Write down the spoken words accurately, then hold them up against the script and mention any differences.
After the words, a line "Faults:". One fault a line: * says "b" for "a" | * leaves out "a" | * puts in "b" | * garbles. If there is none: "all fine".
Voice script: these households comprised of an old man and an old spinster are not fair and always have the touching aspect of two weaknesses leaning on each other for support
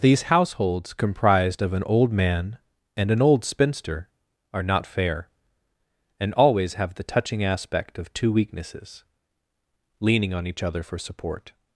these households comprised of an old man and an old spinster are not fair and always have the touching aspect of two weaknesses leaning on each other for support
Faults:
all fine